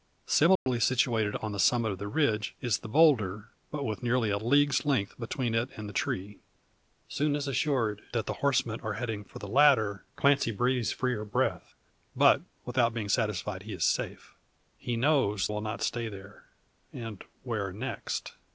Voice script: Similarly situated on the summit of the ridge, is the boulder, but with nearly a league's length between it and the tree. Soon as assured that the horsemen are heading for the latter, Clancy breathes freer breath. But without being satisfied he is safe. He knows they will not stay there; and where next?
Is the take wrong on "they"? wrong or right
wrong